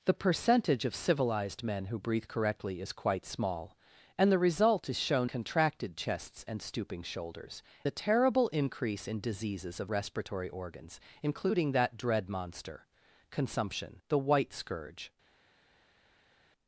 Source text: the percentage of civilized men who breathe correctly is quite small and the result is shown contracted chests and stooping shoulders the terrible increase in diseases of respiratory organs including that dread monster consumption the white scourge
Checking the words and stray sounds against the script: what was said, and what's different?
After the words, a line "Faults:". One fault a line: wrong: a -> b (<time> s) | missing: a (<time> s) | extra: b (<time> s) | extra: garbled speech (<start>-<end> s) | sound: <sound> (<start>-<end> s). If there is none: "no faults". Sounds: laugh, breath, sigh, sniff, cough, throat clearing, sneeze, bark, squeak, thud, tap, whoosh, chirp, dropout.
the percentage of civilized men who breathe correctly is quite small and the result is shown contracted chests and stooping shoulders the terrible increase in diseases of respiratory organs including that dread monster consumption the white scourge
Faults:
no faults